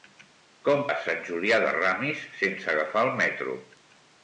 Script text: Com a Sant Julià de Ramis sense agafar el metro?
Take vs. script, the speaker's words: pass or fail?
pass